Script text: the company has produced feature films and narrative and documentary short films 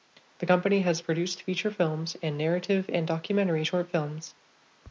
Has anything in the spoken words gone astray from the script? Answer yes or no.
no